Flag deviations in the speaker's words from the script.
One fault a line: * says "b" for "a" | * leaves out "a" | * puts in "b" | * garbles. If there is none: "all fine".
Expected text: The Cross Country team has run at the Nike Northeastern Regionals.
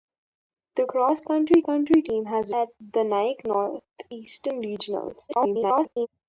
* puts in "Country"
* leaves out "run"
* garbles